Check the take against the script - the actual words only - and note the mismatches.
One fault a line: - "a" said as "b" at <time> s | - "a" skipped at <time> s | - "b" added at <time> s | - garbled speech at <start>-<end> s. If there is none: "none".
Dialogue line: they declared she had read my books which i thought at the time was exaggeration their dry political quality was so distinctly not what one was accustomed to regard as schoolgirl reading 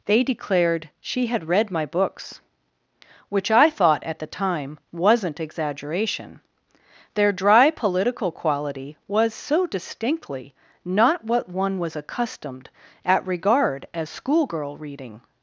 - "was" said as "wasn't" at 4.9 s
- "to" said as "at" at 13.1 s